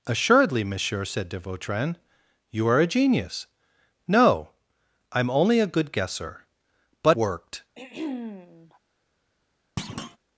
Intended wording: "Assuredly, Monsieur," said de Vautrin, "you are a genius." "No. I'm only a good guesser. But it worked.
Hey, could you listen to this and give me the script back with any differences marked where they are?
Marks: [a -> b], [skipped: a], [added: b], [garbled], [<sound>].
"Assuredly, Monsieur," said de Vautrin, "you are a genius." "No. I'm only a good guesser. But [skipped: it] worked. [throat clearing] [thud]